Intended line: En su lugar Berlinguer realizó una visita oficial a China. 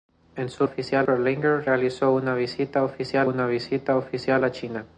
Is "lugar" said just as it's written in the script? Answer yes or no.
no